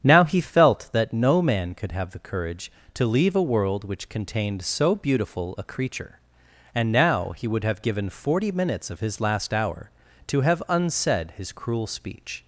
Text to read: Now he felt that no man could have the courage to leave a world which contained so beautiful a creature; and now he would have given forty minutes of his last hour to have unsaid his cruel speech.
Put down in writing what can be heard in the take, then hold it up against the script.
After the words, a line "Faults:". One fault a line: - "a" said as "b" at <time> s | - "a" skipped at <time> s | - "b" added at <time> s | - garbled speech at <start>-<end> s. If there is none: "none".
Now he felt that no man could have the courage to leave a world which contained so beautiful a creature; and now he would have given forty minutes of his last hour to have unsaid his cruel speech.
Faults:
none